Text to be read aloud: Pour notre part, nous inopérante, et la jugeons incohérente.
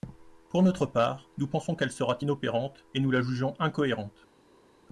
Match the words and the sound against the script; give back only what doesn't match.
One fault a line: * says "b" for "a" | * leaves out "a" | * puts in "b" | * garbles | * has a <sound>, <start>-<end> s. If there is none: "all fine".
* puts in "pensons qu'elle sera"
* puts in "nous"